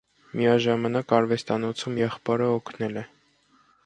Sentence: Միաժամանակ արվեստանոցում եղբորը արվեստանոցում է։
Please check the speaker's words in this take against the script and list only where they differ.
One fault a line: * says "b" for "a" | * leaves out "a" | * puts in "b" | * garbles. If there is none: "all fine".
* says "օգնել" for "արվեստանոցում"